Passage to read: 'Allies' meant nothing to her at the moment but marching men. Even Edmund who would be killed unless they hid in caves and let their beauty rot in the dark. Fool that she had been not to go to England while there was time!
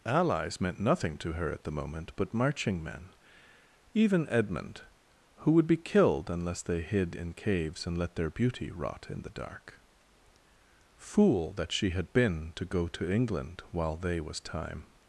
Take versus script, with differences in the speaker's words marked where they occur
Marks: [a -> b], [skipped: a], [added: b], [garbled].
'Allies' meant nothing to her at the moment but marching men. Even Edmund who would be killed unless they hid in caves and let their beauty rot in the dark. Fool that she had been [skipped: not] to go to England while [there -> they] was time!